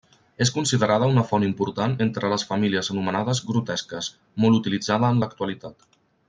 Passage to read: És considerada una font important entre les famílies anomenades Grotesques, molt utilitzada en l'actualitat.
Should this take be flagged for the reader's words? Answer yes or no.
no